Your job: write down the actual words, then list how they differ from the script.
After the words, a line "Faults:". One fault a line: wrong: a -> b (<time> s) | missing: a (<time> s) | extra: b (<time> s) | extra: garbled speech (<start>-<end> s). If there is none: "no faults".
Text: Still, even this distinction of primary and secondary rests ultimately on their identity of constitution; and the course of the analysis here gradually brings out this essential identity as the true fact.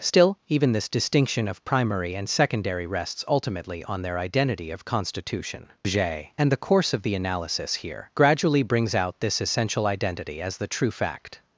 Still, even this distinction of primary and secondary rests ultimately on their identity of constitution; j and the course of the analysis here gradually brings out this essential identity as the true fact.
Faults:
extra: j (5.8 s)